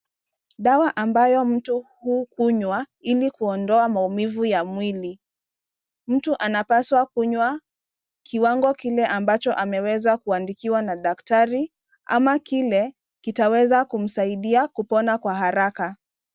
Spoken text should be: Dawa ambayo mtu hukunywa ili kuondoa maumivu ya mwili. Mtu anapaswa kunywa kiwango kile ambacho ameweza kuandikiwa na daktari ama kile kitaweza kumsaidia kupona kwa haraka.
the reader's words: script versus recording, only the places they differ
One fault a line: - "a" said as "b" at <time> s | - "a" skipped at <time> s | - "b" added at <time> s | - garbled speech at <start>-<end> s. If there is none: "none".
none